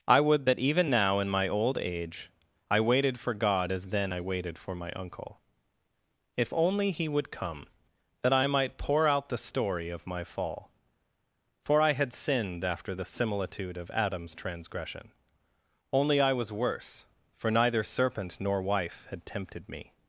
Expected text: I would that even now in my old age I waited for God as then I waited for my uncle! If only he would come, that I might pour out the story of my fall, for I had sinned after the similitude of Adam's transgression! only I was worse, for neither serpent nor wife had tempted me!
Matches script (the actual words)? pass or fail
pass